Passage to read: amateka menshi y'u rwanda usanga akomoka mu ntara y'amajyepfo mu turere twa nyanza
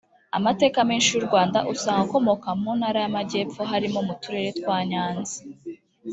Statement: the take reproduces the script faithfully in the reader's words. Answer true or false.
false